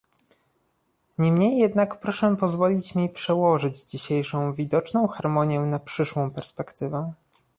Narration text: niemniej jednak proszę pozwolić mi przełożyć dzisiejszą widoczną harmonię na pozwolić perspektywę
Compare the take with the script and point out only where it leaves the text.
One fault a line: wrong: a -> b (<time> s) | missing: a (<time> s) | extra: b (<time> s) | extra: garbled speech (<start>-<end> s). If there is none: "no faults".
wrong: pozwolić -> przyszłą (5.8 s)